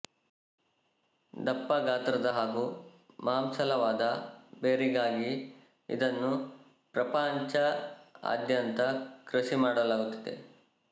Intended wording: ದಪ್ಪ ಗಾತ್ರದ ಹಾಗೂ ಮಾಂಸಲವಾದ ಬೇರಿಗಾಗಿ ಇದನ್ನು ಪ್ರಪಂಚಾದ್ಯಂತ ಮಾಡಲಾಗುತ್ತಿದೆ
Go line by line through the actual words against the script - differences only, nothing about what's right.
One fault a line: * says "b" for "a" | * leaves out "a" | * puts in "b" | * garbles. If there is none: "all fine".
* puts in "ಕೃಷಿ"